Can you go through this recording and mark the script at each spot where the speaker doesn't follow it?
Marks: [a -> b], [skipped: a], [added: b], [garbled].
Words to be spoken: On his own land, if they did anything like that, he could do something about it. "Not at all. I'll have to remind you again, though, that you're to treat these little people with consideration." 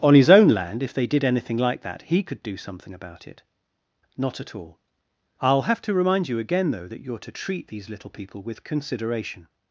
On his own land, if they did anything like that, he could do something about it. "Not at all. I'll have to remind you again, though, that you're to treat these little people with consideration."